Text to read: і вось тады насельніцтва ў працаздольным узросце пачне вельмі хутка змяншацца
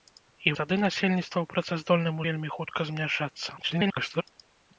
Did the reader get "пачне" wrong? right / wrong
wrong